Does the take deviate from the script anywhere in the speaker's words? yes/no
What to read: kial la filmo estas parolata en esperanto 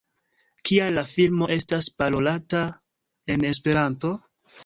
no